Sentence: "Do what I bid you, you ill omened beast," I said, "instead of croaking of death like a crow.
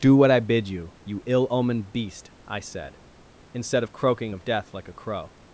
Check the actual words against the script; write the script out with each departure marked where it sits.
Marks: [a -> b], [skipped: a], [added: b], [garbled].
"Do what I bid you, you ill omened beast," I said, "instead of croaking of death like a crow.